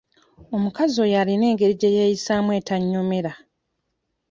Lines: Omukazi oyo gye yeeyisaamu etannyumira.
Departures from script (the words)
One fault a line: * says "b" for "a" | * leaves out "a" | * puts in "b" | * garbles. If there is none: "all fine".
* puts in "alina engeri"